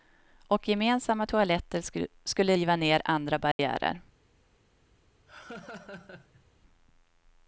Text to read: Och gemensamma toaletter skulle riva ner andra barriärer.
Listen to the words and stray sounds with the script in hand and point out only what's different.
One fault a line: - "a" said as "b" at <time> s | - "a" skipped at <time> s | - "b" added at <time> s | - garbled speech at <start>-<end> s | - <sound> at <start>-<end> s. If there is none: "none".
- dropout at 3.5-3.6 s
- laugh at 5.3-6.4 s